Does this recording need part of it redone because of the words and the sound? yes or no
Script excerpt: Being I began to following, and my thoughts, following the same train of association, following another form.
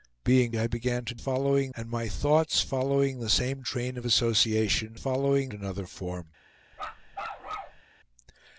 yes